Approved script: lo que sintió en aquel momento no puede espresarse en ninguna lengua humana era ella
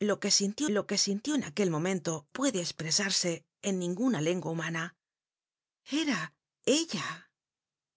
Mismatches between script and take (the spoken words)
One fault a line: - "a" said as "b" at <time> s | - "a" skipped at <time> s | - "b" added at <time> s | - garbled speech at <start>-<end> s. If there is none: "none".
- "lo que sintió" added at 0.7 s
- "no" skipped at 2.3 s